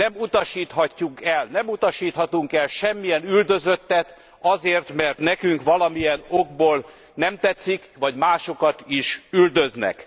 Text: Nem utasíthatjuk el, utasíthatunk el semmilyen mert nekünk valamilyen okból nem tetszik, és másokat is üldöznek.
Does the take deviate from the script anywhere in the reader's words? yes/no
yes